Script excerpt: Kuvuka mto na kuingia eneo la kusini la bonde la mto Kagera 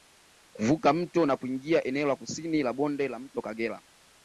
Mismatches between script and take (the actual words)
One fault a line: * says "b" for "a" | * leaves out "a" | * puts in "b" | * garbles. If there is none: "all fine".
all fine